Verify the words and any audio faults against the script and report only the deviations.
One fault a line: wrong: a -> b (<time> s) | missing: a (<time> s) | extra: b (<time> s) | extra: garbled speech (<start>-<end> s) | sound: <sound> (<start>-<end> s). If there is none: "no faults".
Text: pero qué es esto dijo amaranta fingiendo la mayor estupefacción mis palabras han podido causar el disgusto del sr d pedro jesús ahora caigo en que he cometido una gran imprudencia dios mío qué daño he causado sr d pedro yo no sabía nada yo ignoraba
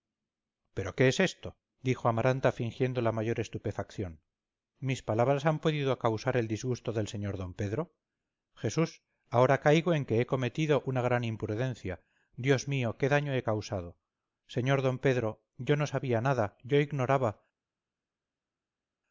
no faults